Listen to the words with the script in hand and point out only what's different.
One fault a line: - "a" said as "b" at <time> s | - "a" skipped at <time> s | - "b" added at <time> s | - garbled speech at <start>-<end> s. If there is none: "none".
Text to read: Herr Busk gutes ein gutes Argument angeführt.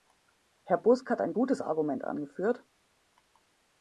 - "gutes" said as "hat" at 1.1 s